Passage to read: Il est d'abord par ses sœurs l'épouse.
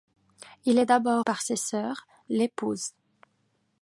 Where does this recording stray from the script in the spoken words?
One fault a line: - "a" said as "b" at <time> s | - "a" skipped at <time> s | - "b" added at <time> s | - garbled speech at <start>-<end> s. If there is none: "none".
none